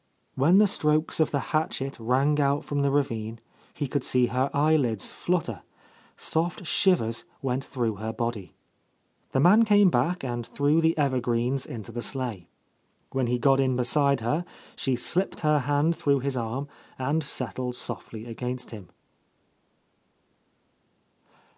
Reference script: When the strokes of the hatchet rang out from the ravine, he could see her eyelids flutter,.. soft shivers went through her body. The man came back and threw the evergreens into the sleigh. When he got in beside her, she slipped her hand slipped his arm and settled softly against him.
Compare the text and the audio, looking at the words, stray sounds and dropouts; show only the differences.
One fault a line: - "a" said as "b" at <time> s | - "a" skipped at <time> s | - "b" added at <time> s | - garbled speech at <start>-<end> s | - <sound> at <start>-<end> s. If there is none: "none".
- "slipped" said as "through" at 16.0 s